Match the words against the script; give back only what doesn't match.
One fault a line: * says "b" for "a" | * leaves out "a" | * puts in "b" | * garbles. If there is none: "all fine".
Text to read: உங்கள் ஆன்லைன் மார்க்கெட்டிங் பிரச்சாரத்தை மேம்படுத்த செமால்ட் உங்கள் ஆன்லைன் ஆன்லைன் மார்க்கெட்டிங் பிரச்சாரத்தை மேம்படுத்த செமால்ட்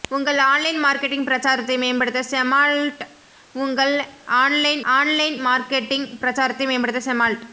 all fine